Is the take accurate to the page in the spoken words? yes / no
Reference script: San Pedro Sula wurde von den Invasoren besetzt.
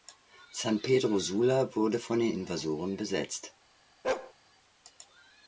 yes